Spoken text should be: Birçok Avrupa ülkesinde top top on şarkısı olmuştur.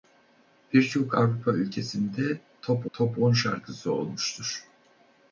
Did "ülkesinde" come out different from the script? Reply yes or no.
no